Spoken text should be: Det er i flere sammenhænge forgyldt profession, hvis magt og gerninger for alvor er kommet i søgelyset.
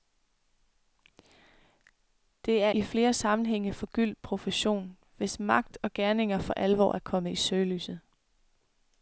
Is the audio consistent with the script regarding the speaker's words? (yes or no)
yes